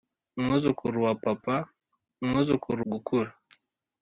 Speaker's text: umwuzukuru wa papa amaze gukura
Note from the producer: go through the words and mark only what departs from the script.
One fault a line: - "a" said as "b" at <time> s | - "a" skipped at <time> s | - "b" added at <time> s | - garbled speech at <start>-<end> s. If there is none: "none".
- "amaze" said as "umwuzukuru" at 2.2 s